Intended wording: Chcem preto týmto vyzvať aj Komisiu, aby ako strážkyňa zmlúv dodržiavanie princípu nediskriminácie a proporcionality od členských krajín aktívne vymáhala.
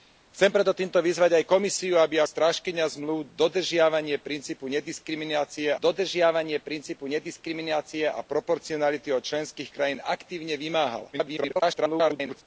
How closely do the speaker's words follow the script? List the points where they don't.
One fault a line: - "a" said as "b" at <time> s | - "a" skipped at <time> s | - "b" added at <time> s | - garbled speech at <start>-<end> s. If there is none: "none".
- "ako" skipped at 2.2 s
- "dodržiavanie princípu nediskriminácie" added at 5.8 s
- garbled speech at 11.1-12.4 s